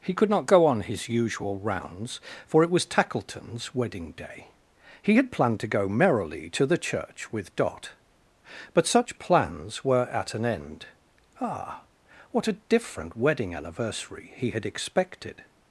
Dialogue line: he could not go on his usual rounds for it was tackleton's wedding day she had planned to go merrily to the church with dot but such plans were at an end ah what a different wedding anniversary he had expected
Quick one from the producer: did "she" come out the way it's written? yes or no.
no